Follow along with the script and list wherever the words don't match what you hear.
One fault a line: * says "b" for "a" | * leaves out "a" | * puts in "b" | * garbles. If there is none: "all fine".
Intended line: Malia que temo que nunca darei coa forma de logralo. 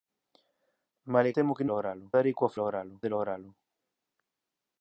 * leaves out "que"
* says "logralo" for "nunca"
* says "logralo" for "forma"